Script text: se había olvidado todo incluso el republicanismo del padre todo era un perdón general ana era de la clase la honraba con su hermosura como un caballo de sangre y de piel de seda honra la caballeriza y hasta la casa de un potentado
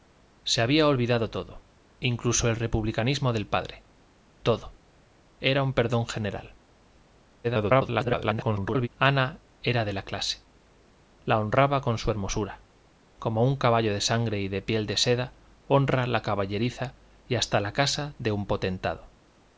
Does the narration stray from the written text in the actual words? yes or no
yes